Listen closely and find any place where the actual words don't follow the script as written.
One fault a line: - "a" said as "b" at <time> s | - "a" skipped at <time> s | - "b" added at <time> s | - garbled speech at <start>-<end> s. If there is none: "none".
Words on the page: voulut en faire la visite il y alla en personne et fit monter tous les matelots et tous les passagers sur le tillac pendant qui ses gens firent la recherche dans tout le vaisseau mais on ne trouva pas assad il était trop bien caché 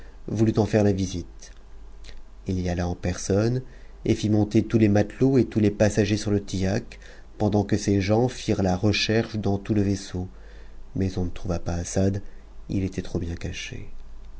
- "qui" said as "que" at 7.6 s